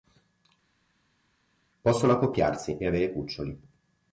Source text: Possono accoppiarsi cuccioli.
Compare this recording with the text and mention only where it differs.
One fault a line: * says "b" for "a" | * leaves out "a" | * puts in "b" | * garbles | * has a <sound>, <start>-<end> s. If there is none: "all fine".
* puts in "e avere"